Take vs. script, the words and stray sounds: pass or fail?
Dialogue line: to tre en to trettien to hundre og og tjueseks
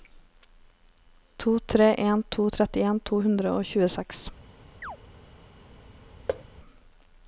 fail